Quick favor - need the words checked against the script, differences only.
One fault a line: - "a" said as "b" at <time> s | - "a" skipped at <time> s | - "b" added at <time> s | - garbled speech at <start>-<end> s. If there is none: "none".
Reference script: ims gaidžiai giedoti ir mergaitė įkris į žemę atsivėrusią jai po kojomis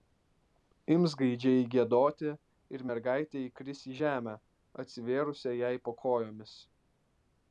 none